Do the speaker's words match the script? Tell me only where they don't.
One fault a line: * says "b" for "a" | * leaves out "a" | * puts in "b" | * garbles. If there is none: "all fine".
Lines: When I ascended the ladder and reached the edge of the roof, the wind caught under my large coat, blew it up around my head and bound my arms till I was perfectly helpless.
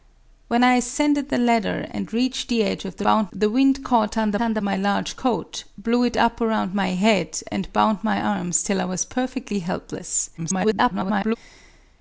* says "bound" for "roof"
* puts in "under"
* garbles